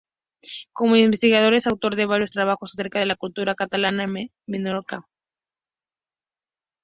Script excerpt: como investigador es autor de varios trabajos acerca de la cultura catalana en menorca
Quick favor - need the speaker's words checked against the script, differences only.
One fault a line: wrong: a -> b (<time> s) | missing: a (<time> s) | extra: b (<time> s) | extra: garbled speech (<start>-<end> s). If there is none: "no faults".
no faults